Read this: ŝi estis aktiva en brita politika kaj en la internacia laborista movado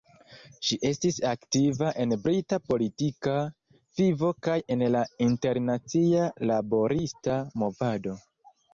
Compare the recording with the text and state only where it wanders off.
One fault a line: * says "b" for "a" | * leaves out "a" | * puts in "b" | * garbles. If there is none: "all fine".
* puts in "vivo"